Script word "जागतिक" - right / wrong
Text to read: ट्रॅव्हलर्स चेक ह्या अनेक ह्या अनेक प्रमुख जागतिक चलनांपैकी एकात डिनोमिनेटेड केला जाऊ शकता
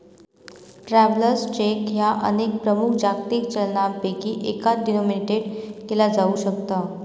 right